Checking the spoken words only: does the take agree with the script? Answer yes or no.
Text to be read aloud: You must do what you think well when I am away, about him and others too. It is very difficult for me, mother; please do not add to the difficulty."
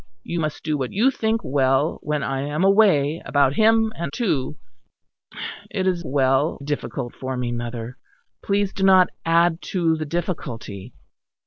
no